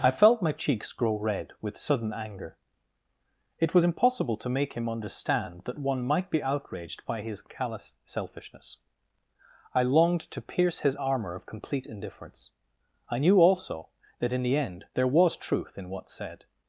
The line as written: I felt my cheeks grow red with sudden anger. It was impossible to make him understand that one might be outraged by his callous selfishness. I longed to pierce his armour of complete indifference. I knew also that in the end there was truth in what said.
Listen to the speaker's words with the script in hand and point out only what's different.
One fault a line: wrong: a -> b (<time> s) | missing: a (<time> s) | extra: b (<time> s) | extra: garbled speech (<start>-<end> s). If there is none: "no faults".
no faults